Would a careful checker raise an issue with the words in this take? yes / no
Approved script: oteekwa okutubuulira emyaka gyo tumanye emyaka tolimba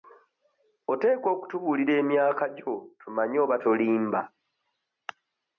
yes